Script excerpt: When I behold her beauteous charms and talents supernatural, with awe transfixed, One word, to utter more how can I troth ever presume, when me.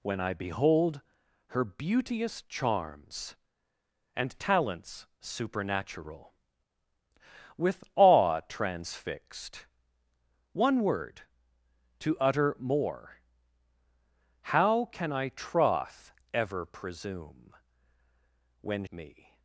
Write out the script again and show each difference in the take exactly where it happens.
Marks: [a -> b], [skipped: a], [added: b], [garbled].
When I behold her beauteous charms and talents supernatural, with awe transfixed, One word, to utter more how can I troth ever presume, when me.